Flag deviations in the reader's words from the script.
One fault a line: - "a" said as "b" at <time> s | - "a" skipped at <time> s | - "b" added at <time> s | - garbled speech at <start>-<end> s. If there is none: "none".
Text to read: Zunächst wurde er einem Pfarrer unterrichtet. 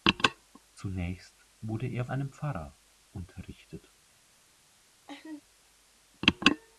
none